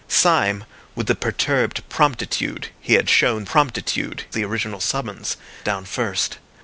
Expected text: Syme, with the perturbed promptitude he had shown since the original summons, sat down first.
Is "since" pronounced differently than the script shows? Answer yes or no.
yes